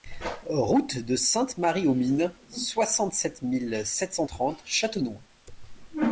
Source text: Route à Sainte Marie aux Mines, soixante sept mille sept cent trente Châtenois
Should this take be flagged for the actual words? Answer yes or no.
yes